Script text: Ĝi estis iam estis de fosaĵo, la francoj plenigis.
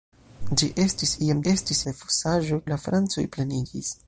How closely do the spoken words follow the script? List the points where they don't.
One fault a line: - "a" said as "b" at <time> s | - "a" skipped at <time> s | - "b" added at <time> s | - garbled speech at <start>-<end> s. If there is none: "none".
none